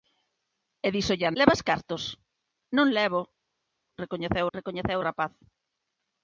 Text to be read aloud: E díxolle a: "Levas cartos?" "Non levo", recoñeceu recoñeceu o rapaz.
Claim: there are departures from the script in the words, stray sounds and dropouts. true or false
false